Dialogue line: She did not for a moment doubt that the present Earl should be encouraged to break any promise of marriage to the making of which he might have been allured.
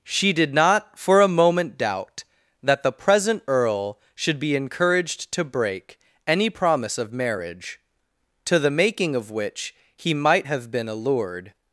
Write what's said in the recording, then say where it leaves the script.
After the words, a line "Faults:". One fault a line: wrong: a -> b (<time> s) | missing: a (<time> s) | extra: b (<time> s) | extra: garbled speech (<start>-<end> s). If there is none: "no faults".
She did not for a moment doubt that the present Earl should be encouraged to break any promise of marriage to the making of which he might have been allured.
Faults:
no faults